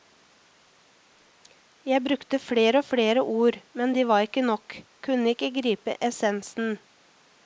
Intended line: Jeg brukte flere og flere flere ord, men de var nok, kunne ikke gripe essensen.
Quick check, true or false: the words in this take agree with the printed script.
false